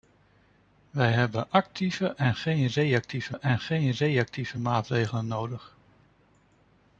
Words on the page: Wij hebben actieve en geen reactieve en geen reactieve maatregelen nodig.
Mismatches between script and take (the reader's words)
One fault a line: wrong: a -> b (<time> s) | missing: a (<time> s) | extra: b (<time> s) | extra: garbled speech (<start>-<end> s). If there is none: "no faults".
no faults